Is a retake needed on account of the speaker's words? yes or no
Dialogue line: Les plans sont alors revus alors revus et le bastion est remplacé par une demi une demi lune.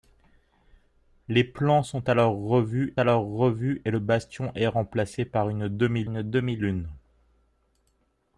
no